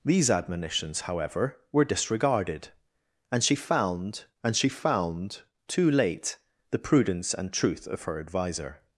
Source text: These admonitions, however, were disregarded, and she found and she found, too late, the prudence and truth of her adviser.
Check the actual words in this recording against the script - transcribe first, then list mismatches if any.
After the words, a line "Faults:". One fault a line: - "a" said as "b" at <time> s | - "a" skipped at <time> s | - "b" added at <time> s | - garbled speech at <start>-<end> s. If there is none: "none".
These admonitions, however, were disregarded, and she found and she found, too late, the prudence and truth of her adviser.
Faults:
none